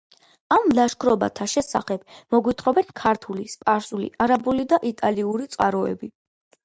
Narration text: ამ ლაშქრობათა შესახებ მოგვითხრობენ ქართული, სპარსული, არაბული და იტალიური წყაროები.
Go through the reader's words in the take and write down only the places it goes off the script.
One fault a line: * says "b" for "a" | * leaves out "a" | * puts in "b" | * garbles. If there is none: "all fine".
all fine